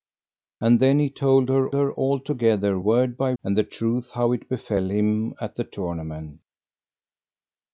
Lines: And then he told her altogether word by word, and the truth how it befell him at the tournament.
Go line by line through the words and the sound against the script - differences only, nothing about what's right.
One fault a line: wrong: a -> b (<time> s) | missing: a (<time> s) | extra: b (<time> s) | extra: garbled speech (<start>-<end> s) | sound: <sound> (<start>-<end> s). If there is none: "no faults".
extra: her (1.7 s)
missing: word (3.3 s)